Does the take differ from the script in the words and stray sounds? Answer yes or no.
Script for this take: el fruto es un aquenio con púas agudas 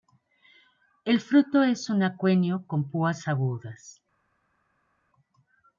no